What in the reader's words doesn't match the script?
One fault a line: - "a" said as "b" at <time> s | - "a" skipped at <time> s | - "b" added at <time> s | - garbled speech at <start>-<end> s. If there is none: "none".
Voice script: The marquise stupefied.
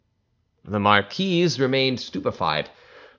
- "remained" added at 1.6 s